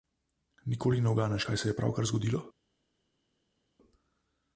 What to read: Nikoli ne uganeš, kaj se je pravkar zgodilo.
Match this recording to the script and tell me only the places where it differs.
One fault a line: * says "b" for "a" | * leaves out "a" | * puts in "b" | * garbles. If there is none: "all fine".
all fine